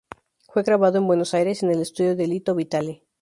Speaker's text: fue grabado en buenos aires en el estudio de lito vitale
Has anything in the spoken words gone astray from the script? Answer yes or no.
no